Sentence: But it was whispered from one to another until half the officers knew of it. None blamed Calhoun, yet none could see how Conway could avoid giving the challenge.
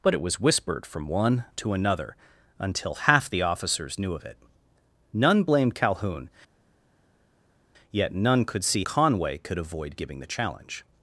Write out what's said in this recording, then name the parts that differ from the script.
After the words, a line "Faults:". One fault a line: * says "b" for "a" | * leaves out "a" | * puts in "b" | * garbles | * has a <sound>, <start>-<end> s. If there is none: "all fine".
But it was whispered from one to another until half the officers knew of it. None blamed Calhoun, yet none could see Conway could avoid giving the challenge.
Faults:
* leaves out "how"